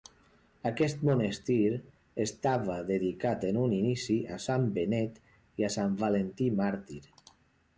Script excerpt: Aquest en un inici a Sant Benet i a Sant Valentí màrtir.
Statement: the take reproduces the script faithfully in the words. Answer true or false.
false